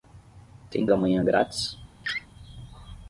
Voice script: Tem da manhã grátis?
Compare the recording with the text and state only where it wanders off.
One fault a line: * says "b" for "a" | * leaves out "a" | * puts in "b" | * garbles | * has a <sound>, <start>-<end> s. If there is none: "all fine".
* has a laugh, 2.0-2.3 s